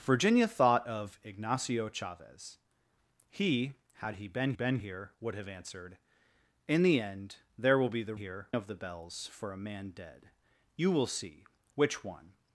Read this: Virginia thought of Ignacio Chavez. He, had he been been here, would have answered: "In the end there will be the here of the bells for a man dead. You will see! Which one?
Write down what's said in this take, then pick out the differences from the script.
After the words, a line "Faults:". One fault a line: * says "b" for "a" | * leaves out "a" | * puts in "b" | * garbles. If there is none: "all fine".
Virginia thought of Ignacio Chavez. He, had he been been here, would have answered: "In the end there will be the here of the bells for a man dead. You will see! Which one?
Faults:
all fine